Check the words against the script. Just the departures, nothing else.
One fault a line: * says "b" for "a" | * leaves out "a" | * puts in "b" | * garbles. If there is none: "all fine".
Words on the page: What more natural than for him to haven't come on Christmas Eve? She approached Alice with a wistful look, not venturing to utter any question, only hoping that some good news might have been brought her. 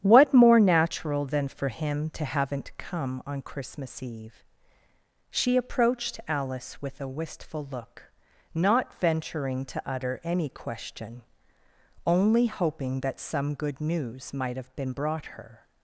all fine